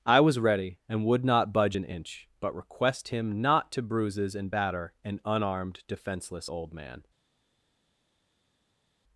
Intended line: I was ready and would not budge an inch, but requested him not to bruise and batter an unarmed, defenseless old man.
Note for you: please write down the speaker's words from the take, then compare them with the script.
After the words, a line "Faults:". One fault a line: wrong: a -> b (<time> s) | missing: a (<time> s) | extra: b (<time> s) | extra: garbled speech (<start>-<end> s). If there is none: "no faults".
I was ready and would not budge an inch, but request him not to bruises and batter an unarmed, defenseless old man.
Faults:
wrong: requested -> request (2.6 s)
wrong: bruise -> bruises (3.8 s)